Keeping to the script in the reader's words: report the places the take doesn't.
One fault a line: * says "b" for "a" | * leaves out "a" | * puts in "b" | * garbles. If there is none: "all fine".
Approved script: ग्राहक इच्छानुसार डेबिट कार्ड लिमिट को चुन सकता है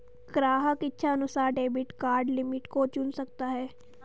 all fine